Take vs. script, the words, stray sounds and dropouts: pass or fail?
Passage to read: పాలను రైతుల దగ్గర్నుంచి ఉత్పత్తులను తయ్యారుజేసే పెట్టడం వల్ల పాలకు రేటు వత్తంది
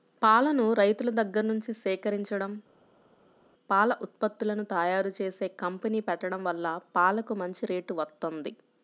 fail